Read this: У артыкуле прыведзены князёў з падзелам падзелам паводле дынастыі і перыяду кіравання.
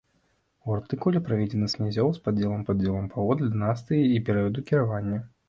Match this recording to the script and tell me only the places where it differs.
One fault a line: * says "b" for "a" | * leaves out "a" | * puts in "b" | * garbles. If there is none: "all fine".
all fine